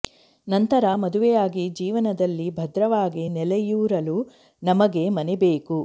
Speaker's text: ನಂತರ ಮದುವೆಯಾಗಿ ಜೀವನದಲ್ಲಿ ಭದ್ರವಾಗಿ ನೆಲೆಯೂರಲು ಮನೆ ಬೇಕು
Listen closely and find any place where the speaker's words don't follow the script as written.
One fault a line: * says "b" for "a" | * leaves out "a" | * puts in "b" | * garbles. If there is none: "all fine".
* puts in "ನಮಗೆ"